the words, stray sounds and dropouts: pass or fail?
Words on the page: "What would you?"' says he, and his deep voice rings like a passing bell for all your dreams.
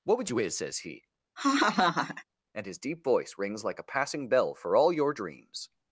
fail